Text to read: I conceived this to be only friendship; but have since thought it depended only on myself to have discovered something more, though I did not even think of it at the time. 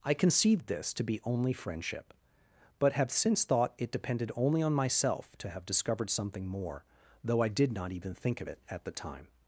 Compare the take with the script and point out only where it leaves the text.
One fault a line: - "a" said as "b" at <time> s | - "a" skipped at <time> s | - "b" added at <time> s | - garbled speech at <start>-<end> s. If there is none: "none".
none